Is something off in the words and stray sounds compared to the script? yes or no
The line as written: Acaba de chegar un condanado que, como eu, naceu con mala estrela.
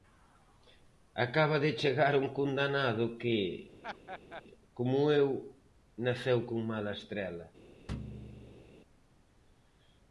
yes